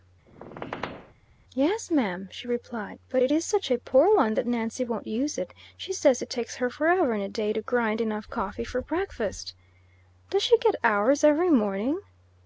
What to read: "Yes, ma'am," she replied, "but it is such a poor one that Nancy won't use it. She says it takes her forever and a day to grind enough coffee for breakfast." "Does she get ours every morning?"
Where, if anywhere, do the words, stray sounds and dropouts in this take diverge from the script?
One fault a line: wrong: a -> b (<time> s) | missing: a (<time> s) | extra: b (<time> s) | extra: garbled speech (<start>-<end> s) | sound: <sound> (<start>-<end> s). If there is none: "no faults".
sound: squeak (0.3-1.1 s)